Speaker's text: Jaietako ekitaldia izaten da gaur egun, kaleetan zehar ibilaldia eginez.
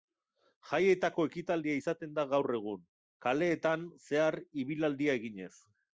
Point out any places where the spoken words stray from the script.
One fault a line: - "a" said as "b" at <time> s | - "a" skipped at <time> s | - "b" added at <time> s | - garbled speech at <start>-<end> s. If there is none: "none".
none